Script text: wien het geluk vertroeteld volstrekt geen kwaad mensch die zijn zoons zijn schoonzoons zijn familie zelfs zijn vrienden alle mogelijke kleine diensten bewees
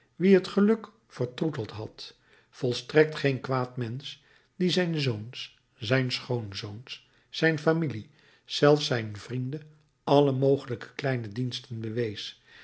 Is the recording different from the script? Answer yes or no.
yes